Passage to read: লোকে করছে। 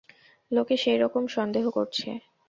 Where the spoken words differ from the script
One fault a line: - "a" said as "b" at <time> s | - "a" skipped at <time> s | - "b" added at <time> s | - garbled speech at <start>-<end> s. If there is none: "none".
- "সেইরকম সন্দেহ" added at 0.8 s